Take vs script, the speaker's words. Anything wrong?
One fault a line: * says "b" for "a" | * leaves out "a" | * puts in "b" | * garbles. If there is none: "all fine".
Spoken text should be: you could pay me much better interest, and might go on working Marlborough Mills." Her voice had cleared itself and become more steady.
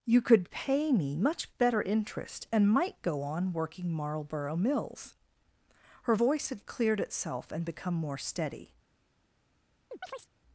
all fine